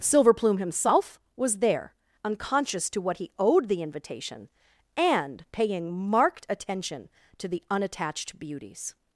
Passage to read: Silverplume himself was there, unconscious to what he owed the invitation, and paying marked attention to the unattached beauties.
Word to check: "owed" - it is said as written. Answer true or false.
true